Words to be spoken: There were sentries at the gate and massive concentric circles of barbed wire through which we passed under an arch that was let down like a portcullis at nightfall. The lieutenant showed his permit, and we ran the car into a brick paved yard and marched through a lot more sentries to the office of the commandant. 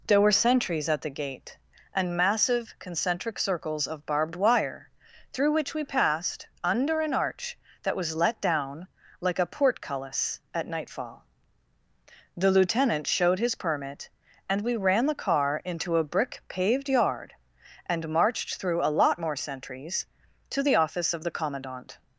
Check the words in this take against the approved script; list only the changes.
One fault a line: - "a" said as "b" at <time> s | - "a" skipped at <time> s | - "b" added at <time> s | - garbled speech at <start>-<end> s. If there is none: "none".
none